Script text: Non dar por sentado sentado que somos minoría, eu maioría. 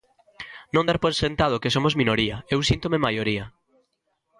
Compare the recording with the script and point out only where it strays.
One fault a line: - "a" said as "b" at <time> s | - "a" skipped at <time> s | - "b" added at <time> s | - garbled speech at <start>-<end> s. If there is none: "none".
- "sentado" skipped at 1.6 s
- "síntome" added at 2.7 s